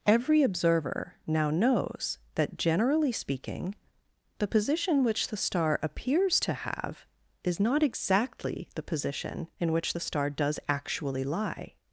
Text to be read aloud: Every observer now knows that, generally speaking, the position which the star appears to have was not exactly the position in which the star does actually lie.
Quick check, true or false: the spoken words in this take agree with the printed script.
false